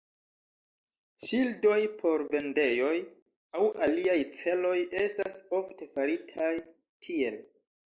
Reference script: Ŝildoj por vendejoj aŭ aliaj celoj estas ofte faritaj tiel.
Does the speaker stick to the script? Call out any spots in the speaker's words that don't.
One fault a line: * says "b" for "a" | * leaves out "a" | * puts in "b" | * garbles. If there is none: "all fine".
all fine